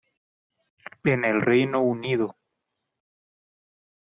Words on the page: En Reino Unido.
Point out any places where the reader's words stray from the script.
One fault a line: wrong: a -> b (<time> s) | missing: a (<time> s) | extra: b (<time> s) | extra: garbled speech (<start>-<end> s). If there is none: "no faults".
extra: el (1.2 s)